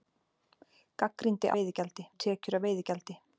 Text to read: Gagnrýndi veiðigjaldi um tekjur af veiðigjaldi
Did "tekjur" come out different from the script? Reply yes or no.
no